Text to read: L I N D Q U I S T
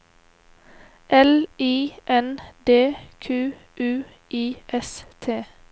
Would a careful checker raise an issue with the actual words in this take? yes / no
no